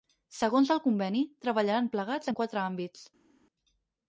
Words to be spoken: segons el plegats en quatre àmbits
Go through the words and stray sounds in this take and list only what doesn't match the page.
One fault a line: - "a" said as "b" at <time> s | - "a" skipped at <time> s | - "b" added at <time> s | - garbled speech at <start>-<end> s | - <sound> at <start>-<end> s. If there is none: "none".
- "conveni treballaran" added at 0.8 s